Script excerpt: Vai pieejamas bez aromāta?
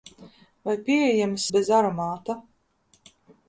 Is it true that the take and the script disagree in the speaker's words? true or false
false